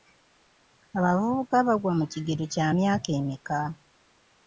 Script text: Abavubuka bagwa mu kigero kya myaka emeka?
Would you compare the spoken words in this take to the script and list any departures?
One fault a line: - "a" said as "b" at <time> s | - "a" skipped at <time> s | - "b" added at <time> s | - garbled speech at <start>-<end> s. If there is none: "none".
none